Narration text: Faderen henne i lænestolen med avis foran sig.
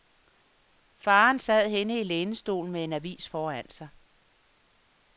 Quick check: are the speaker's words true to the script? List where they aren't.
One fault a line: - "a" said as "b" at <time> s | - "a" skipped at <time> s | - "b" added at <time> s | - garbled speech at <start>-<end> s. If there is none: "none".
- "sad" added at 1.4 s
- "en" added at 2.8 s